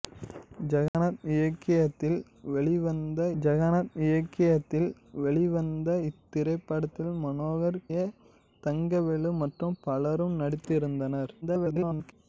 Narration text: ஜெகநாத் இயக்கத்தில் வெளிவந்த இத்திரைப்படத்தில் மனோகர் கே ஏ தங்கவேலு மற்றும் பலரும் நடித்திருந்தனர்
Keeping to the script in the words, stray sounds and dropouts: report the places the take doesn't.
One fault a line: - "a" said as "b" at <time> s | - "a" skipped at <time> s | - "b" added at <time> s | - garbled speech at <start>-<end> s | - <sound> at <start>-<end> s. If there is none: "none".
- dropout at 0.9-0.9 s
- "ஜெகநாத் இயக்கத்தில் வெளிவந்த" added at 3.4 s
- "கே" skipped at 7.8 s
- garbled speech at 11.4-12.1 s